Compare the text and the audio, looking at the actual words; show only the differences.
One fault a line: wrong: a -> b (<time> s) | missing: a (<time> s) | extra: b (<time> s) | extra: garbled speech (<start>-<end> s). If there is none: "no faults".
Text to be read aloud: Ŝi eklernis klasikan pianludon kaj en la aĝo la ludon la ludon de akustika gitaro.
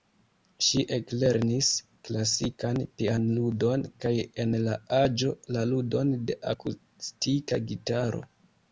missing: la ludon (6.2 s)